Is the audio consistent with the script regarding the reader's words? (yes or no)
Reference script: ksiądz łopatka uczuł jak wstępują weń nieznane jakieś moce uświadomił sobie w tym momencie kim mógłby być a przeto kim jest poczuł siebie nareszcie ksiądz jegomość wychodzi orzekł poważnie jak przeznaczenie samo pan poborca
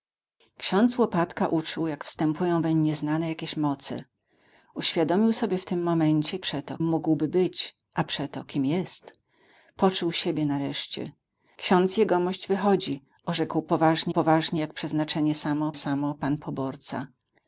no